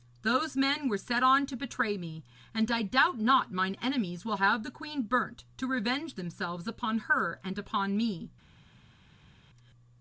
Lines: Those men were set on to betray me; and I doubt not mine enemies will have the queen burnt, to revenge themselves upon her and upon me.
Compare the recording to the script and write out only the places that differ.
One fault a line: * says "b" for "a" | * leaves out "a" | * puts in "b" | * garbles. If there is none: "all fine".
all fine